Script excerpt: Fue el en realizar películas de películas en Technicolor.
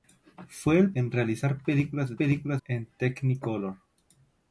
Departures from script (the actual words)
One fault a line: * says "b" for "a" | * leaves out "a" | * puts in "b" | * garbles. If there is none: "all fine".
all fine